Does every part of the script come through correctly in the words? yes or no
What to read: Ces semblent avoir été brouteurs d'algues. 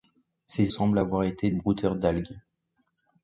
yes